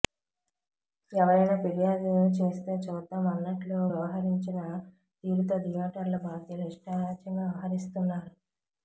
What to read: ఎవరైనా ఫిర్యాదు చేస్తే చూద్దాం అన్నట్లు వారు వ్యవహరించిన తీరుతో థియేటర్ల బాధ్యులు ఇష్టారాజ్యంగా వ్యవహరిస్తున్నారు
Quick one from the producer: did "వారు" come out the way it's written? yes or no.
no